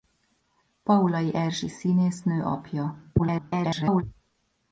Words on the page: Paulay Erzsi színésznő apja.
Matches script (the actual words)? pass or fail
fail